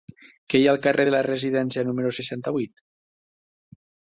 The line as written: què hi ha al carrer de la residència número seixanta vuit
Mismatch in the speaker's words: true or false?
false